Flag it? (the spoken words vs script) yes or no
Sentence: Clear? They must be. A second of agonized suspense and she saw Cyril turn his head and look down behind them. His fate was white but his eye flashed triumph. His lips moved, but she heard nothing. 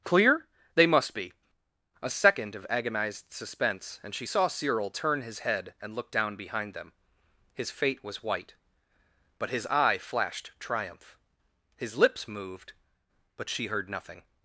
no